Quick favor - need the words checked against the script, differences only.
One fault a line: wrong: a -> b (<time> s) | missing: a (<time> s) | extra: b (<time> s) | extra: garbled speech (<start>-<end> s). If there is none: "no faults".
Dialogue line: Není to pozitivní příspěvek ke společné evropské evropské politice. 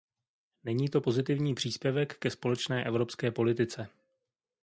missing: evropské (3.3 s)